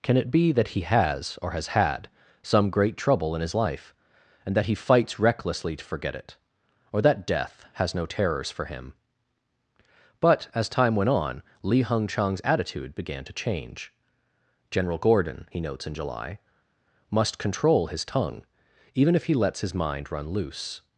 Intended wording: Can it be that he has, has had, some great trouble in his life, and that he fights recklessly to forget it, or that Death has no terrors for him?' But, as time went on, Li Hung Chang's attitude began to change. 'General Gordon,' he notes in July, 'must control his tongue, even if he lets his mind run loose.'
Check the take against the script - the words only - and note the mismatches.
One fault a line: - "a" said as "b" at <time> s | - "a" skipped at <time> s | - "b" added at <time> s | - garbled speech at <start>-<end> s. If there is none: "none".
- "or" added at 1.4 s